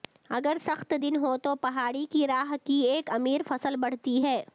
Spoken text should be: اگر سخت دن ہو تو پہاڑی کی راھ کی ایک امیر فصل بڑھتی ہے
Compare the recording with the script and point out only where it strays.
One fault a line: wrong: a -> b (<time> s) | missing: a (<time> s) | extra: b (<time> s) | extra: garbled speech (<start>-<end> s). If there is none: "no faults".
no faults